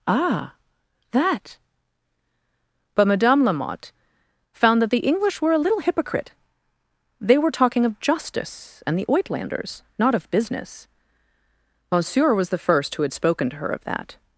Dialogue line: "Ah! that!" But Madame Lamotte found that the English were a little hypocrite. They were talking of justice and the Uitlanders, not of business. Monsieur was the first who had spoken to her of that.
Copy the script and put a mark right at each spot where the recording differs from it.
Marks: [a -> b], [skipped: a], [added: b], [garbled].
"Ah! that!" But Madame Lamotte found that the English were a little hypocrite. They were talking of justice and the Uitlanders, not of business. Monsieur was the first who had spoken to her of that.